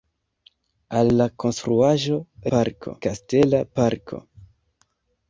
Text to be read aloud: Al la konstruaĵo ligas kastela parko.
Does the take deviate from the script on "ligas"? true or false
true